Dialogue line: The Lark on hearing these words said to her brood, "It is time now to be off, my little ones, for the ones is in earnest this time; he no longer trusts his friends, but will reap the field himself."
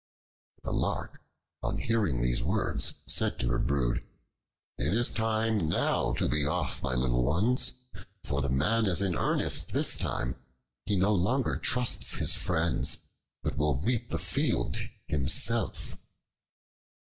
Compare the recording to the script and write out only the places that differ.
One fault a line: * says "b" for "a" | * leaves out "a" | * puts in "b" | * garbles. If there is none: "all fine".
* says "man" for "ones"